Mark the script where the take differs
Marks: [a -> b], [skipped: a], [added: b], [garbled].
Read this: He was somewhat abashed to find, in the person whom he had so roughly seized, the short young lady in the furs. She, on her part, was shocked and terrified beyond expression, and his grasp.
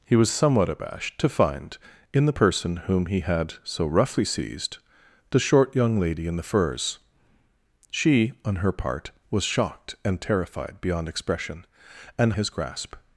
He was somewhat abashed to find, in the person whom he had so roughly seized, the short young lady in the furs. She, on her part, was shocked and terrified beyond expression, and his grasp.